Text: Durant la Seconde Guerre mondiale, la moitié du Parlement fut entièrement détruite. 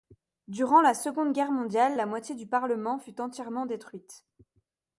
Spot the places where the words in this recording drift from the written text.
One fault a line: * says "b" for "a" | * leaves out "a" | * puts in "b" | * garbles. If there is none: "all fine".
all fine